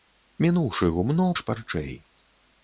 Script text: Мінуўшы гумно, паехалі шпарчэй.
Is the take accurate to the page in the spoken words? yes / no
no